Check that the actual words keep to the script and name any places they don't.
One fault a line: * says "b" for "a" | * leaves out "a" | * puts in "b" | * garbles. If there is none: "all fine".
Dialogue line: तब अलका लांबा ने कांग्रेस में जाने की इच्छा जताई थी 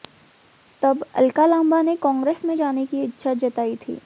all fine